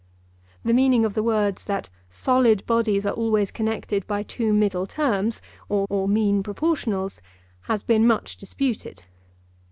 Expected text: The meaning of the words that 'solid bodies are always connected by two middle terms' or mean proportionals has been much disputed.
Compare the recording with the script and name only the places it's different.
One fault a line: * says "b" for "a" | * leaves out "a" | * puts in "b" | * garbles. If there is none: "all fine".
* puts in "or"